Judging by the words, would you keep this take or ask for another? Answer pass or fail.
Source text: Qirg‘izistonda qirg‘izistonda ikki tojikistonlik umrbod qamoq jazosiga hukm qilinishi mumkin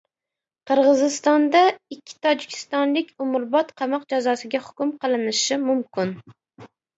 fail